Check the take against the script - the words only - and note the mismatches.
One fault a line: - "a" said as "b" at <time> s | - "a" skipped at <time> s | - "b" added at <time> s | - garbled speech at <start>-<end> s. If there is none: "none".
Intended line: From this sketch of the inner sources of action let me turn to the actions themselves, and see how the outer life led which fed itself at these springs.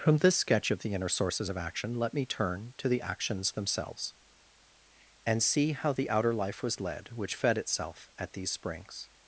- "was" added at 6.6 s